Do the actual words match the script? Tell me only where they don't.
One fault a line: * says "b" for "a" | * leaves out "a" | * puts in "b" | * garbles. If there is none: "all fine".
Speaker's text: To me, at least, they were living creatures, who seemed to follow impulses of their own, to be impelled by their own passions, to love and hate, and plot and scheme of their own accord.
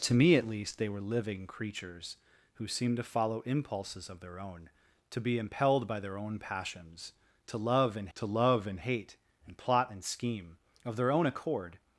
* puts in "to love and"